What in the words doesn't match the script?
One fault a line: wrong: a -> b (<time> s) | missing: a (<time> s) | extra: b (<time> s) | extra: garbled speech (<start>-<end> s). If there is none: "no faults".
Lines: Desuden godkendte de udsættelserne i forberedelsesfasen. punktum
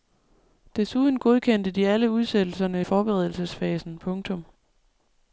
extra: alle (1.9 s)